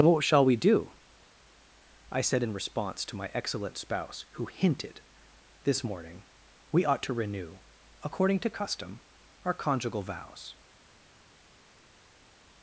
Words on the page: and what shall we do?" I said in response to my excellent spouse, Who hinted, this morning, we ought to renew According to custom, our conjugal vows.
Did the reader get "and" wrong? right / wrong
wrong